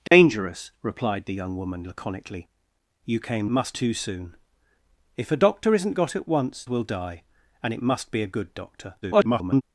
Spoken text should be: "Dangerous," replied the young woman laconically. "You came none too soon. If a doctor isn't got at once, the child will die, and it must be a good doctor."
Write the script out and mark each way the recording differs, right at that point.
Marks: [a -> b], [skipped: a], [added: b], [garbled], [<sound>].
"Dangerous," [dropout] replied the young woman laconically. "You came [none -> must] too soon. If a doctor isn't got at once, [skipped: the child] will die, and it must be a good doctor." [garbled]